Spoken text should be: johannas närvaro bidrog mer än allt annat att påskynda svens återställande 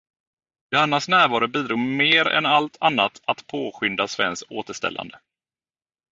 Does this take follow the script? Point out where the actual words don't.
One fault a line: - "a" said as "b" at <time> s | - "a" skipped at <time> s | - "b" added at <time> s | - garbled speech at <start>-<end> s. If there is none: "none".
none